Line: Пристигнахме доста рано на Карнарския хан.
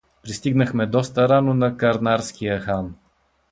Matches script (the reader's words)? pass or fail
pass